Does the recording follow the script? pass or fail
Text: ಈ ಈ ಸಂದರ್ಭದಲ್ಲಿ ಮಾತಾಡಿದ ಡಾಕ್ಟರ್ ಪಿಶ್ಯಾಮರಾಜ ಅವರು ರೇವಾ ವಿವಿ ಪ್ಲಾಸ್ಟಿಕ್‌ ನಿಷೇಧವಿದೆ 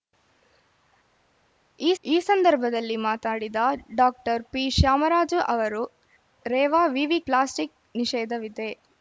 pass